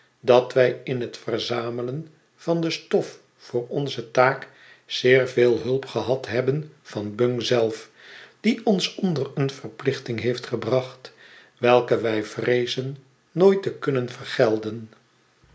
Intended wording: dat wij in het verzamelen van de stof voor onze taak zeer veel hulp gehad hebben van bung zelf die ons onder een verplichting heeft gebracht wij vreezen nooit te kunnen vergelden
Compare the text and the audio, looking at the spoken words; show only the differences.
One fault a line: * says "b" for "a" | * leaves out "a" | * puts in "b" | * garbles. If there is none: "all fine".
* puts in "welke"